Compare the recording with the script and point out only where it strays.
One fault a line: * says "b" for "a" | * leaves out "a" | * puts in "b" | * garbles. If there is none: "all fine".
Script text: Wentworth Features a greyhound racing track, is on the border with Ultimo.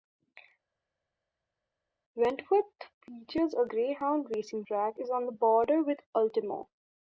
all fine